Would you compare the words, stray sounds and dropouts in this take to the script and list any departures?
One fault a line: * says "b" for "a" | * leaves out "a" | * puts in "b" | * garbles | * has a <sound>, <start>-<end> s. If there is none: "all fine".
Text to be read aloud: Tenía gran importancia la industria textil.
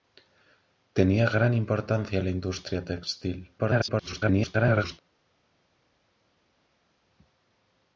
* garbles